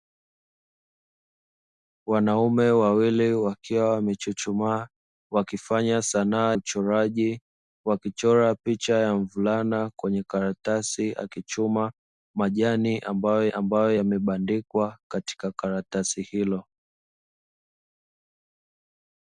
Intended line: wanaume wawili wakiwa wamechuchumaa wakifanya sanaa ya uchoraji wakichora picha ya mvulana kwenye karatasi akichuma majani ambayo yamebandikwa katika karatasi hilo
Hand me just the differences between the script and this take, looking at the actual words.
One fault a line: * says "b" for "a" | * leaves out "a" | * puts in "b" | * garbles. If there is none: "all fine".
* leaves out "ya"
* puts in "ambayo"